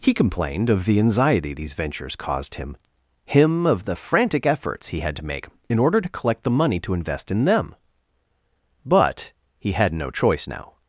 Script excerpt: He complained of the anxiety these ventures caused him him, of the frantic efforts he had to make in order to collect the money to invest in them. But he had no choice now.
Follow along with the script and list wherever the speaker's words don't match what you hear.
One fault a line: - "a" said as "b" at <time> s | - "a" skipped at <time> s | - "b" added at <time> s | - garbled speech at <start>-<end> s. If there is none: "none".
none